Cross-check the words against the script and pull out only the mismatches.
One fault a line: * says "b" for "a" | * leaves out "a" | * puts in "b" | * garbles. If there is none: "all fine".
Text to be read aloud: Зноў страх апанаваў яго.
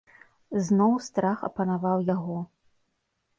all fine